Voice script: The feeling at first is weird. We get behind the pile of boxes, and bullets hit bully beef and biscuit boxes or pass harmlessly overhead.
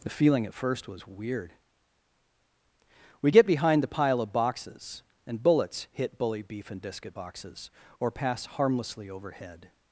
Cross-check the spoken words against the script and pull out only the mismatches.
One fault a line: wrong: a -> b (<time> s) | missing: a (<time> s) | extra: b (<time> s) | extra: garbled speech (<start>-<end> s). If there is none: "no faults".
wrong: is -> was (0.9 s)